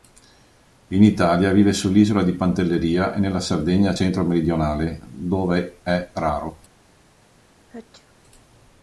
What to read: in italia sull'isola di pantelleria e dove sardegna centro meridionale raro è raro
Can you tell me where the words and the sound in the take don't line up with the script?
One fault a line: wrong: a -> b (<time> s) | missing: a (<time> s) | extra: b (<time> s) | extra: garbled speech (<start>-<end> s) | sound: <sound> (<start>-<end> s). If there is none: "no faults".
extra: vive (1.5 s)
wrong: dove -> nella (3.2 s)
wrong: raro -> dove (5.1 s)
sound: sneeze (7.6-8.1 s)